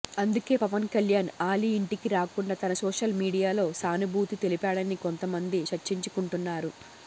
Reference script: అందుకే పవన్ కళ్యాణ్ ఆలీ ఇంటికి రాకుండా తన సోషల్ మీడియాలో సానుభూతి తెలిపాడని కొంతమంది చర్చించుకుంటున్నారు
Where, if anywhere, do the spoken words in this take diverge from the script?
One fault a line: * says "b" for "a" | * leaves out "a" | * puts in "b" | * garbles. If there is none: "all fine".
all fine